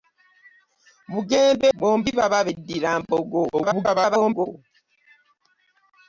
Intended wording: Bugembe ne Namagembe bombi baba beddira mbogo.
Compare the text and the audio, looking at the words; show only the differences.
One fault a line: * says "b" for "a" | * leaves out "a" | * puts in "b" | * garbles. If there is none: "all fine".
* leaves out "ne Namagembe"
* garbles